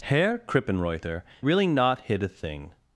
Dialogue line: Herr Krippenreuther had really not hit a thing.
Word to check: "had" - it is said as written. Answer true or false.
false